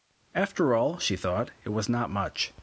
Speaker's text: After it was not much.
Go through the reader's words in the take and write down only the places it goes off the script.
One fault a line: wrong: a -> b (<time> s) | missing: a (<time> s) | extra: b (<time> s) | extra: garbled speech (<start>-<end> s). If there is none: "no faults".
extra: all she thought (0.7 s)